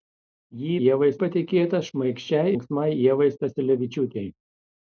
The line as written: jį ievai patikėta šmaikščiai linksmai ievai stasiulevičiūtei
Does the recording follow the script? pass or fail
pass